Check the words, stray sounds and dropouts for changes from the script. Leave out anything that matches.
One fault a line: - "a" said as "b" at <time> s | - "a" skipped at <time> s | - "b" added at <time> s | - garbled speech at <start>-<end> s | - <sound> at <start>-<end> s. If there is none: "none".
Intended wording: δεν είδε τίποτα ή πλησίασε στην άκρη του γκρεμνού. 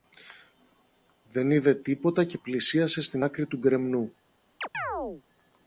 - "ή" said as "και" at 2.2 s
- chirp at 4.6-5.2 s